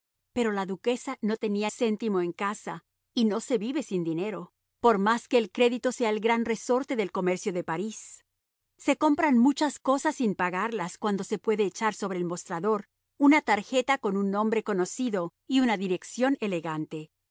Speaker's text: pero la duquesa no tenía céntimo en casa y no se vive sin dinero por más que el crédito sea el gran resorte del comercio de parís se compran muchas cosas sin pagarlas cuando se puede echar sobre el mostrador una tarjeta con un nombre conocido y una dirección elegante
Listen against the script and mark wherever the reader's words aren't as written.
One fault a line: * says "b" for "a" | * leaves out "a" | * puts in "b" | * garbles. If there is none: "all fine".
all fine